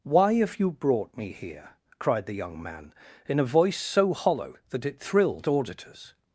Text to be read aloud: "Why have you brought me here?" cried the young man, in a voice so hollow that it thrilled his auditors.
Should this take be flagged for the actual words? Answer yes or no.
yes